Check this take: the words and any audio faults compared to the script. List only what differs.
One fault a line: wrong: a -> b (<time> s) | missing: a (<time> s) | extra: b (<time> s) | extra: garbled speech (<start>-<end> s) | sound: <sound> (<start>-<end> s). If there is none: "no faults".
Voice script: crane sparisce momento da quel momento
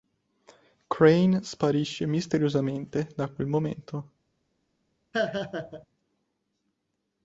wrong: momento -> misteriosamente (2.1 s)
sound: laugh (5.1-5.9 s)